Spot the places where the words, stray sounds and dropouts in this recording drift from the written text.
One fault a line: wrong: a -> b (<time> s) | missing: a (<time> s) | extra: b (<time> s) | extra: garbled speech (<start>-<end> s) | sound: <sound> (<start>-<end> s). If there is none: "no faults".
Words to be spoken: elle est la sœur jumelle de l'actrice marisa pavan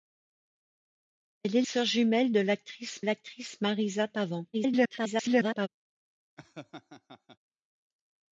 missing: la (1.6 s)
extra: l'actrice (3.0 s)
extra: garbled speech (4.5-5.7 s)
sound: laugh (6.4-7.4 s)